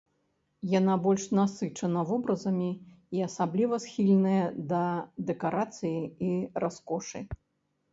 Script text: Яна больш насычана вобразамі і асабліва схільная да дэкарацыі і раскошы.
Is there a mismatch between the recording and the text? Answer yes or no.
no